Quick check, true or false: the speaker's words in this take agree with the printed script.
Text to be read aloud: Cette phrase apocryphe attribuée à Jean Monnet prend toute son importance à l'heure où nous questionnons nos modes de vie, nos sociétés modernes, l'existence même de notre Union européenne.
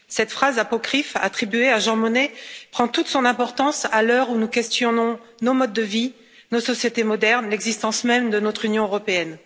true